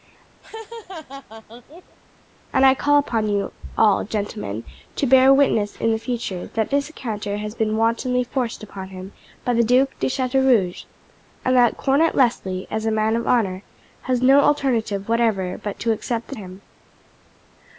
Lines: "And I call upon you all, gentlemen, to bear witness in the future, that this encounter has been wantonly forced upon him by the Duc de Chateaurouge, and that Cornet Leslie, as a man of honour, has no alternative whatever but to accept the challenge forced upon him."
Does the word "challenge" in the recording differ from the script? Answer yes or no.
yes